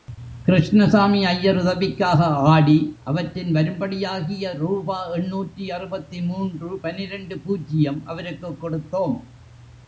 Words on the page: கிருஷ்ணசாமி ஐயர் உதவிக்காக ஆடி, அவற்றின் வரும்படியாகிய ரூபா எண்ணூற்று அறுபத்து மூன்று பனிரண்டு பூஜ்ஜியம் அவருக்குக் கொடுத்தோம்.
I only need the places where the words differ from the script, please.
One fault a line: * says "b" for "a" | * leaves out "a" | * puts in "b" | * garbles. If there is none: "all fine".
all fine